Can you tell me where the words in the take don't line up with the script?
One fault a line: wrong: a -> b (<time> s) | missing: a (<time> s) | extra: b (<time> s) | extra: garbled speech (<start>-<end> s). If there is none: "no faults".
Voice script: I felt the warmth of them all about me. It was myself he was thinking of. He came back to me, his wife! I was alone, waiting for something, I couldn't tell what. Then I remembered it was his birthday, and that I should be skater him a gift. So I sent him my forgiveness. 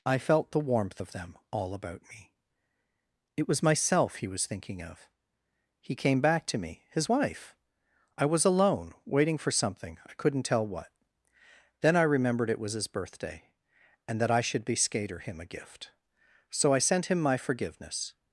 no faults